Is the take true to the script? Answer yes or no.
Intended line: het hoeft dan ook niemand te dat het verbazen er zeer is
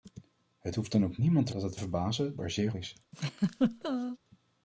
yes